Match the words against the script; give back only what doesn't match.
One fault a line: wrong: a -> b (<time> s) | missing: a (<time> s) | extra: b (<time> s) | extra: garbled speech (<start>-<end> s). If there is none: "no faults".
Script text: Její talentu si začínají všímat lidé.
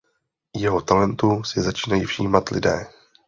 wrong: Její -> Jeho (0.6 s)